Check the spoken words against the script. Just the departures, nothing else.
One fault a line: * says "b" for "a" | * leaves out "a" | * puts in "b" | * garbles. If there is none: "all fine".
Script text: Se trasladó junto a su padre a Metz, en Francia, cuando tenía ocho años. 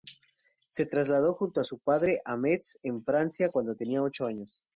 all fine